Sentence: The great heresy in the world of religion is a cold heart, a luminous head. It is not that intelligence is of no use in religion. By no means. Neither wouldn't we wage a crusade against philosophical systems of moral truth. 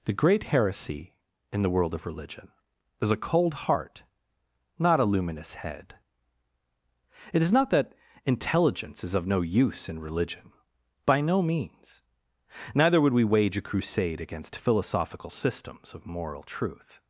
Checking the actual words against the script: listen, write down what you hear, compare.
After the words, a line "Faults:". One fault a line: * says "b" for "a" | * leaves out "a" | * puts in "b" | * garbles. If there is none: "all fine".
The great heresy in the world of religion is a cold heart, not a luminous head. It is not that intelligence is of no use in religion. By no means. Neither would we wage a crusade against philosophical systems of moral truth.
Faults:
* puts in "not"
* says "would" for "wouldn't"